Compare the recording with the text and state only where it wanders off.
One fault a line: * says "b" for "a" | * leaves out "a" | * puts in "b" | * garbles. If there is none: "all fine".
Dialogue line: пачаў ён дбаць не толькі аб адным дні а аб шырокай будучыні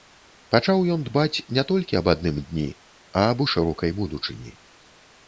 all fine